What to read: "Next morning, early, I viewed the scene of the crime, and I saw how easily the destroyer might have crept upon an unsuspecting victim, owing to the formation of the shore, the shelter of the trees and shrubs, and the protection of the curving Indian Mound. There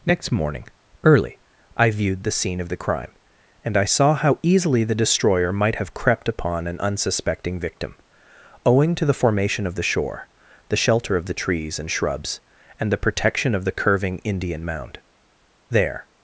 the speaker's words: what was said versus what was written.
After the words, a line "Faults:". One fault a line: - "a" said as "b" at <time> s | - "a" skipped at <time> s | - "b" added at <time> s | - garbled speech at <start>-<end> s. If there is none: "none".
"Next morning, early, I viewed the scene of the crime, and I saw how easily the destroyer might have crept upon an unsuspecting victim, owing to the formation of the shore, the shelter of the trees and shrubs, and the protection of the curving Indian Mound. There
Faults:
none